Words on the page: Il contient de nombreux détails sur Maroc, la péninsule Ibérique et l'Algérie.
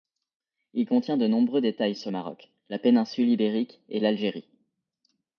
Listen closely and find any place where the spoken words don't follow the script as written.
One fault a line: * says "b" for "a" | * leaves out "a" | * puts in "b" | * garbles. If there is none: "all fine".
all fine